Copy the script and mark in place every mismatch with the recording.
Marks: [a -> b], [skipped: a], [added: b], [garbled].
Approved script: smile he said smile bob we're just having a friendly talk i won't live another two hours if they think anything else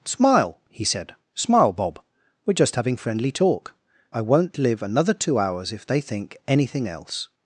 smile he said smile bob we're just having [skipped: a] friendly talk i won't live another two hours if they think anything else